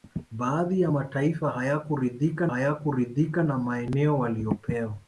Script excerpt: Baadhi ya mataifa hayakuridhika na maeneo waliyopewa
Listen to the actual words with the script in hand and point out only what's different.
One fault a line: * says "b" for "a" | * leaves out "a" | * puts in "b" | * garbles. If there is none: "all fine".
* puts in "hayakuridhika"